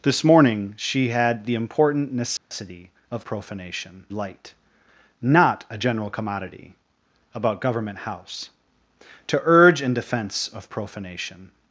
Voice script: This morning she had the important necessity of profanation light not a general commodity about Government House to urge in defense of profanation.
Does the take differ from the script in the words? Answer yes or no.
no